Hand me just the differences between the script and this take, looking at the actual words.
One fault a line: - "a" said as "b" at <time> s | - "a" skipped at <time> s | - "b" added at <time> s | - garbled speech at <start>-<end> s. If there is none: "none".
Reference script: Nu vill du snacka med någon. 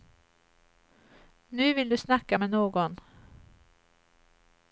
none